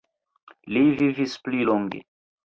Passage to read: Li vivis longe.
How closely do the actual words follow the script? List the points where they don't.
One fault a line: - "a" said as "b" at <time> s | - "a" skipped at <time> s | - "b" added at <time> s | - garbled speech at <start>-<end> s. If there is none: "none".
- "pli" added at 1.5 s